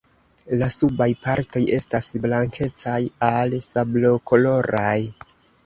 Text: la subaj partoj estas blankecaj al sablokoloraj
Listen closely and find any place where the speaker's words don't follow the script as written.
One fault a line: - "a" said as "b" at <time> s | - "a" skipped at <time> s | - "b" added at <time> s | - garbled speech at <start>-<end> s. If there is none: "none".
none